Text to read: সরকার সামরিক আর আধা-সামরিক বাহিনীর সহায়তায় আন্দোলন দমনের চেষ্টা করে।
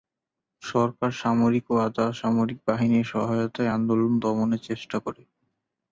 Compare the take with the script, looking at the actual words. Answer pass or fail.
fail